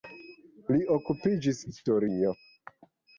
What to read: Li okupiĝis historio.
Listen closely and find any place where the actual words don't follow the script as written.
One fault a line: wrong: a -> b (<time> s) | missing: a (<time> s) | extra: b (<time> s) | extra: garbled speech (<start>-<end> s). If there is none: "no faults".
no faults